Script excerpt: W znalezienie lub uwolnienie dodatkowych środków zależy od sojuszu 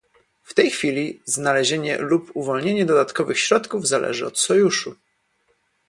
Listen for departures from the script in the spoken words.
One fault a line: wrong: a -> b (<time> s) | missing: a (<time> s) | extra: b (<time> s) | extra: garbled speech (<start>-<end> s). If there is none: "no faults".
extra: tej chwili (0.5 s)